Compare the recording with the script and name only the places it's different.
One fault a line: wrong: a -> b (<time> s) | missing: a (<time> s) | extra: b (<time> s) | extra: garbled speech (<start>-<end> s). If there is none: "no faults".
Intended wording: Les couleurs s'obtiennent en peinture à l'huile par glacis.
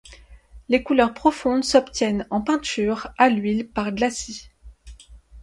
extra: profondes (1.1 s)